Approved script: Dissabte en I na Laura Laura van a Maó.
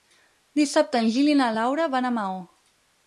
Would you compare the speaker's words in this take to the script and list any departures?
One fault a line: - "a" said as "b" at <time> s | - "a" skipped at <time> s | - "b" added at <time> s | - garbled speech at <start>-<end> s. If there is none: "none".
- "Gil" added at 1.2 s
- "Laura" skipped at 1.9 s